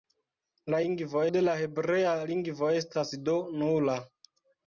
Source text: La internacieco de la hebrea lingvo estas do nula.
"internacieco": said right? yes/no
no